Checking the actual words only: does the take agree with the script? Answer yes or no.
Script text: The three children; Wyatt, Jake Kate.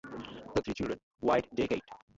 yes